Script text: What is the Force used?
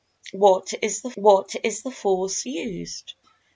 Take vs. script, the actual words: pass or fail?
fail